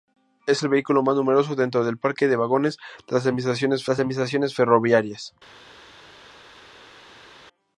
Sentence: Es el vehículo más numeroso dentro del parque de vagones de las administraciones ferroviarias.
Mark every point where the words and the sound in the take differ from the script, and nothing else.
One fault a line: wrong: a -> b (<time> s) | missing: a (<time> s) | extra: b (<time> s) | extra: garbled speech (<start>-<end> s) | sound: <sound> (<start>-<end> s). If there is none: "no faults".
extra: las administraciones (3.9 s)